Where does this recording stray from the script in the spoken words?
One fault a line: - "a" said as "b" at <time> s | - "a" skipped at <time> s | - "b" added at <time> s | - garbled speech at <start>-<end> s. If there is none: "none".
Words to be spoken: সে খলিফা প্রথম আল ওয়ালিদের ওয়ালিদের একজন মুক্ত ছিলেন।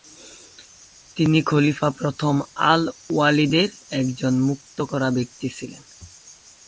- "সে" said as "তিনি" at 1.1 s
- "ওয়ালিদের" skipped at 3.7 s
- "করা ব্যক্তি" added at 4.8 s